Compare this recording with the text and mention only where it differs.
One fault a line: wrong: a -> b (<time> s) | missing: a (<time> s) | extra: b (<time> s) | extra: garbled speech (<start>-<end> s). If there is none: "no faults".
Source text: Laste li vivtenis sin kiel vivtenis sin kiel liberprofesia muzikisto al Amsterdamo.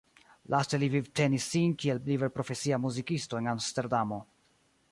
missing: vivtenis sin kiel (2.0 s)
wrong: al -> en (3.4 s)